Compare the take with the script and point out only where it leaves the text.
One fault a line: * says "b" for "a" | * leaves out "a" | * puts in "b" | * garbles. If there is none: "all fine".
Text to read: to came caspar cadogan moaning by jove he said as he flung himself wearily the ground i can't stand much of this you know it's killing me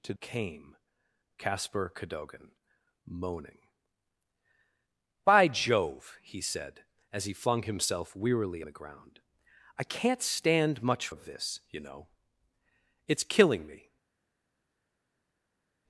all fine